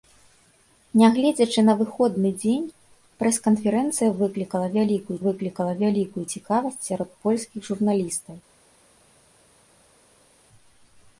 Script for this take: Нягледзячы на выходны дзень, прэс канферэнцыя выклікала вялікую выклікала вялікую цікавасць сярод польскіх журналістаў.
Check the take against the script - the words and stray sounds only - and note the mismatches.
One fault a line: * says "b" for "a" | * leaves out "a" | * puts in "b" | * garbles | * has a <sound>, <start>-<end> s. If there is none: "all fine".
all fine